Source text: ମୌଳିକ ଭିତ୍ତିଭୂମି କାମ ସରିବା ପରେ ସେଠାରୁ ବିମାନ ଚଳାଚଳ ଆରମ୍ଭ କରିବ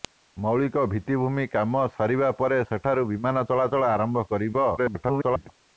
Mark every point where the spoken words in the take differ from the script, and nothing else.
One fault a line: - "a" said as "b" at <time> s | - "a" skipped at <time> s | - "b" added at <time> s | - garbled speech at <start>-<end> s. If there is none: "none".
- garbled speech at 4.8-5.5 s